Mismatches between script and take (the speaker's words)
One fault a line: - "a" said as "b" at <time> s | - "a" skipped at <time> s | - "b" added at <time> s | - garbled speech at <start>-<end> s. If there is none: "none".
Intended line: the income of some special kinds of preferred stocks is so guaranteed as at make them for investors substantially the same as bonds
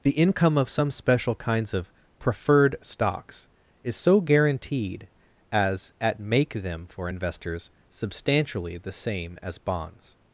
none